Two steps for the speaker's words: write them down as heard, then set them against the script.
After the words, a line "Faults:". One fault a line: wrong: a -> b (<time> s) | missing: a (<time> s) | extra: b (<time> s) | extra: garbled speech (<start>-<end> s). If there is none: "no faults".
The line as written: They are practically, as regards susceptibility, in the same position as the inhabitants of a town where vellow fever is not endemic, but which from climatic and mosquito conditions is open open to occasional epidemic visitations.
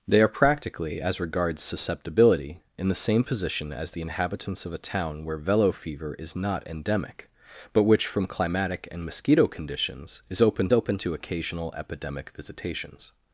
They are practically, as regards susceptibility, in the same position as the inhabitants of a town where vellow fever is not endemic, but which from climatic and mosquito conditions is open open to occasional epidemic visitations.
Faults:
no faults